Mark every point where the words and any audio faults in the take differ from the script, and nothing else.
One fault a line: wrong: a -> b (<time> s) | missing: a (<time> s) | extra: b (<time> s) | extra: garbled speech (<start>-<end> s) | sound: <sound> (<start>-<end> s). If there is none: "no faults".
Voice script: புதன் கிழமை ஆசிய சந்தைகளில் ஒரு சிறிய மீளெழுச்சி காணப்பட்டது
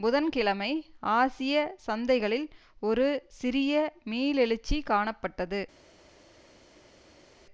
no faults